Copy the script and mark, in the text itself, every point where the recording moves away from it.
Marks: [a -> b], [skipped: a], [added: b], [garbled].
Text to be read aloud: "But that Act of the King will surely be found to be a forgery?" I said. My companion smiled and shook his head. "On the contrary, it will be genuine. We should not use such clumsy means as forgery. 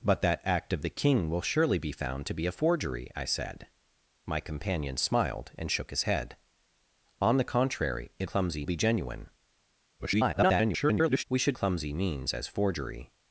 "But that Act of the King will surely be found to be a forgery?" I said. My companion smiled and shook his head. "On the contrary, it [will -> clumsy] be genuine. [garbled] We should [skipped: not use such] clumsy means as forgery.